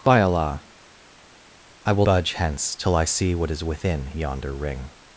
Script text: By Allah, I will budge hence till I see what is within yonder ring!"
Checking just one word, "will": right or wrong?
right